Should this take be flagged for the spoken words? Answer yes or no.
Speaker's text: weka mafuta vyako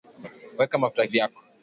no